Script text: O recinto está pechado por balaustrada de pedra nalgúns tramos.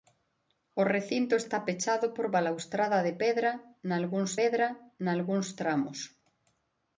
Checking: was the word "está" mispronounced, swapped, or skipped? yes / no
no